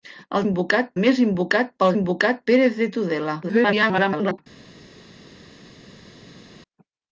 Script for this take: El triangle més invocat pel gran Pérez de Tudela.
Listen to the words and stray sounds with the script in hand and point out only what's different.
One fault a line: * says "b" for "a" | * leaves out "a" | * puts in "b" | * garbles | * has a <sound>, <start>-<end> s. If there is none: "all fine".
* says "invocat" for "triangle"
* says "invocat" for "gran"
* garbles